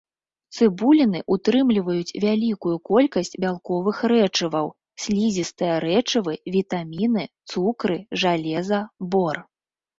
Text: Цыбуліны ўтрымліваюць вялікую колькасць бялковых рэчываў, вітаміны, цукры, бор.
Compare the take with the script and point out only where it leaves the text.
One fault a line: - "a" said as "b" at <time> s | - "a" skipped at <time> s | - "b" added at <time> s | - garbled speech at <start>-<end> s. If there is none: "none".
- "слізістыя рэчывы" added at 5.1 s
- "жалеза" added at 8.3 s